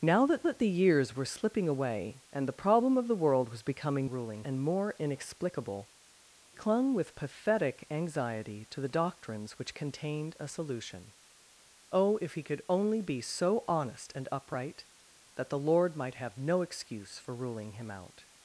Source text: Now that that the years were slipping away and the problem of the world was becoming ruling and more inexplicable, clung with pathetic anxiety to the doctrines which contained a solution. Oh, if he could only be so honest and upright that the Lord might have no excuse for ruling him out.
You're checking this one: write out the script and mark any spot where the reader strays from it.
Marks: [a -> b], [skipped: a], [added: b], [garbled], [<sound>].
Now that that the years were slipping away and the problem of the world was becoming ruling and more inexplicable, clung with pathetic anxiety to the doctrines which contained a solution. Oh, if he could only be so honest and upright that the Lord might have no excuse for ruling him out.